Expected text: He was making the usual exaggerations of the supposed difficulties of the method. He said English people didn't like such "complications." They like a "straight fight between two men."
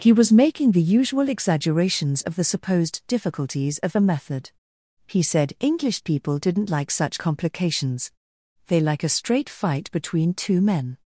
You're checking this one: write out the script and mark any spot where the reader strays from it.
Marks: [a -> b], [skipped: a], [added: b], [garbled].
He was making the usual exaggerations of the supposed difficulties of the method. He said English people didn't like such "complications." They like a "straight fight between two men."